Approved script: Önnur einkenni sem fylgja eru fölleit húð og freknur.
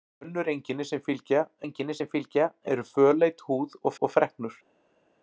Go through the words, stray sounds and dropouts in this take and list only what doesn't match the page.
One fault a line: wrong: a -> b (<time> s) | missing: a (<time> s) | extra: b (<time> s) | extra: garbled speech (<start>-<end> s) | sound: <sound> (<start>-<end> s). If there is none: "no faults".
extra: einkenni sem fylgja (1.6 s)
extra: og (4.0 s)